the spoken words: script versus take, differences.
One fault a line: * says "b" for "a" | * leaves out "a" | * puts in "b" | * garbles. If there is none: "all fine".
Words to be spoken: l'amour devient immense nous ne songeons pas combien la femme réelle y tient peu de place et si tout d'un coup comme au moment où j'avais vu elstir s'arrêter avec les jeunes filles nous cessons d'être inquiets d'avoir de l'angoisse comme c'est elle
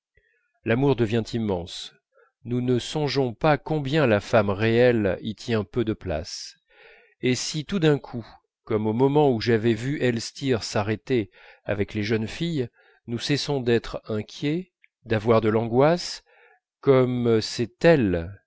all fine